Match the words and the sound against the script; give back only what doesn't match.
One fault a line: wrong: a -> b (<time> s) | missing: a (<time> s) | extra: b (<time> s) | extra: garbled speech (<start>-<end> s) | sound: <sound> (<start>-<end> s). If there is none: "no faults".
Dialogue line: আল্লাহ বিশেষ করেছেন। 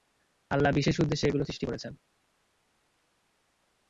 extra: উদ্দেশ্যে এগুলো সৃষ্টি (1.0 s)